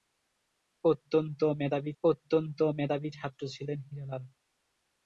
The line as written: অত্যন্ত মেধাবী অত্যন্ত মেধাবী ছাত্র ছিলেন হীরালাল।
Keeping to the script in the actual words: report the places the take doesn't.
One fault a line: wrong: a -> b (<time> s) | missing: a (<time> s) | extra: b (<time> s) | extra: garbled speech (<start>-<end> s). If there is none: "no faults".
no faults